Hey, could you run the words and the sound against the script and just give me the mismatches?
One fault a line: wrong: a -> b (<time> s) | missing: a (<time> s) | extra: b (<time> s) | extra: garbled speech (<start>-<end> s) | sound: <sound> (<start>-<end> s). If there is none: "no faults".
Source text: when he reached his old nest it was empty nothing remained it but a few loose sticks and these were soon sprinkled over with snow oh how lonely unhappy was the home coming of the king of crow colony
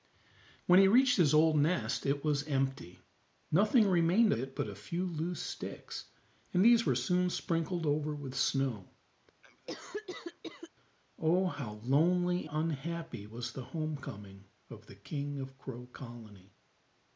sound: cough (9.4-10.7 s)